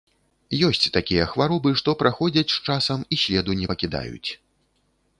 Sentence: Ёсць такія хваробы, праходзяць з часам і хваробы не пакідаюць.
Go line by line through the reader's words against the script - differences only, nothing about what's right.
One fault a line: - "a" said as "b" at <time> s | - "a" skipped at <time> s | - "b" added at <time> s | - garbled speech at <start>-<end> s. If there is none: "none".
- "што" added at 1.8 s
- "хваробы" said as "следу" at 3.2 s